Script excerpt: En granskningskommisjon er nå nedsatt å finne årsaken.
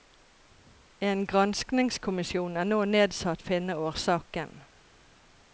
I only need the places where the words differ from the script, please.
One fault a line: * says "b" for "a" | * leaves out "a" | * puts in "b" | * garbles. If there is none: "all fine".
all fine